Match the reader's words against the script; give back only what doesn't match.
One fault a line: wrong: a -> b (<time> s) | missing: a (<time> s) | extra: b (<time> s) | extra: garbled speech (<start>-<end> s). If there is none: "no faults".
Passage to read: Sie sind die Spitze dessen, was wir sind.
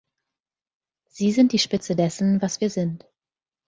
no faults